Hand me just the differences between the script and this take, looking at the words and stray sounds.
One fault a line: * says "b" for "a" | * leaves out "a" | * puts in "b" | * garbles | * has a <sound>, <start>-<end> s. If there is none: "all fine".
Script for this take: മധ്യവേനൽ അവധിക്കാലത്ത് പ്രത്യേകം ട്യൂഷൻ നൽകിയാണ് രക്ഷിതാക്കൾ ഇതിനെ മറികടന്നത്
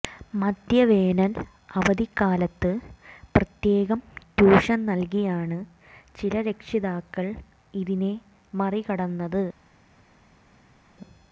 * puts in "ചില"